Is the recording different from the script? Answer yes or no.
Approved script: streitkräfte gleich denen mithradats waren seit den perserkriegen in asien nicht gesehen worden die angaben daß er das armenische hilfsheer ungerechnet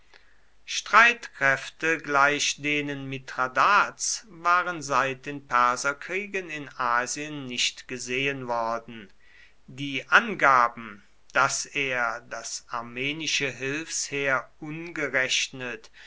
no